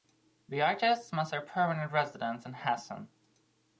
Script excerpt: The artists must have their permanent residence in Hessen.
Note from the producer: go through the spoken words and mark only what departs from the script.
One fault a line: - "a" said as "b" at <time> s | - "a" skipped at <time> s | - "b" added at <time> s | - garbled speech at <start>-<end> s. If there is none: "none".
- "have" skipped at 1.3 s